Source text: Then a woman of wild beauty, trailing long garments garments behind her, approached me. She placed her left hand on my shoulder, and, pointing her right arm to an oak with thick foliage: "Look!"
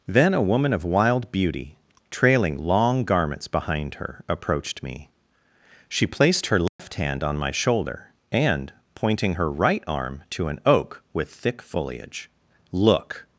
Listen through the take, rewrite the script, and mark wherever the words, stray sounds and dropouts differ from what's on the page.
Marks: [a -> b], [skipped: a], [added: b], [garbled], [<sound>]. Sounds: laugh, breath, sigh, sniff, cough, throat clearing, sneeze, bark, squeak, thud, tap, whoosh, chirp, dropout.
Then a woman of wild beauty, trailing long garments [skipped: garments] behind her, approached me. She placed her left [dropout] hand on my shoulder, and, pointing her right arm to an oak with thick foliage: "Look!"